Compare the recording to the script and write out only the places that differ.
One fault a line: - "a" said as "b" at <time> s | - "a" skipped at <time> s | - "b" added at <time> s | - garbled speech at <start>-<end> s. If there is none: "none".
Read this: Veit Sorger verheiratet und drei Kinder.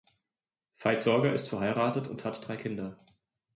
- "ist" added at 1.3 s
- "hat" added at 2.2 s